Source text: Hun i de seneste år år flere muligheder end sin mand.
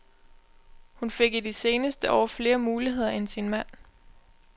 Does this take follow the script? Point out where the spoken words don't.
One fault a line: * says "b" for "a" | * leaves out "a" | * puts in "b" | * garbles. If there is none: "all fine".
* puts in "fik"
* leaves out "år"